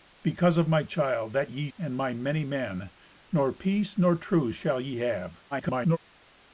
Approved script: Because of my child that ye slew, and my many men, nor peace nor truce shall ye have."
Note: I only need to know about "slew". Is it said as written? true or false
false